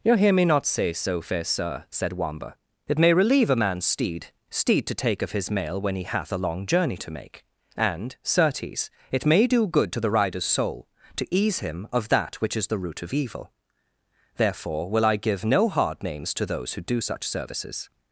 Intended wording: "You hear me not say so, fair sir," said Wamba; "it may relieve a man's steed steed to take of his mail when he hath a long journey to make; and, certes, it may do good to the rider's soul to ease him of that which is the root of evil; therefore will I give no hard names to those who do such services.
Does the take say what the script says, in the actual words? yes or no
yes